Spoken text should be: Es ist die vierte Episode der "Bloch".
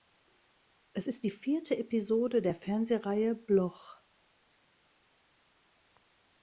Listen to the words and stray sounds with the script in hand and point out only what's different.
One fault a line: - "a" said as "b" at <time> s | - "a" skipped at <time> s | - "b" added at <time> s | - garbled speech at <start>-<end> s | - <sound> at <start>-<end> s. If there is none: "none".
- "Fernsehreihe" added at 2.5 s